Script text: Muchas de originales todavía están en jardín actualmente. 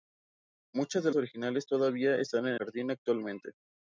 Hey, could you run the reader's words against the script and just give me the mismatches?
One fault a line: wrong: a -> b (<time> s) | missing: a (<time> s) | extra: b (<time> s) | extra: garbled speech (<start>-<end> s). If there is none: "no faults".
no faults